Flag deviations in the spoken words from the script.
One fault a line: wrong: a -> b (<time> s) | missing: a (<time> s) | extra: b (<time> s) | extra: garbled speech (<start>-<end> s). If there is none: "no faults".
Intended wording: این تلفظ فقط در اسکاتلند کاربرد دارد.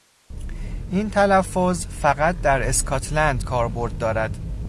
no faults